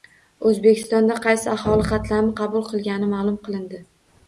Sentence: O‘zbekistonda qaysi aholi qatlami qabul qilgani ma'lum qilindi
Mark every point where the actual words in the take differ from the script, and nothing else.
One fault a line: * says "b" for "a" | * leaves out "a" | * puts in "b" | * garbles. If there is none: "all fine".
all fine